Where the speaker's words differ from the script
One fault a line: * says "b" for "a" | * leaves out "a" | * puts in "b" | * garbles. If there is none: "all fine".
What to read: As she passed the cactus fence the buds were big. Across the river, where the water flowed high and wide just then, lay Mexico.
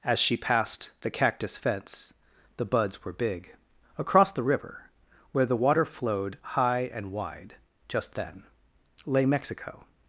all fine